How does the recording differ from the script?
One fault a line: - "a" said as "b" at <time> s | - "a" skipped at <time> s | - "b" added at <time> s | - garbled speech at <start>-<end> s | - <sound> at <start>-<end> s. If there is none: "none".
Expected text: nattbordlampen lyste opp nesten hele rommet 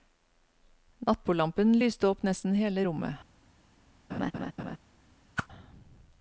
- laugh at 4.1-4.8 s
- whoosh at 5.4-5.5 s